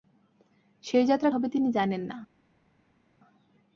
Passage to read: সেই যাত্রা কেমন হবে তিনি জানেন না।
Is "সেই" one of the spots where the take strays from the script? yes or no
no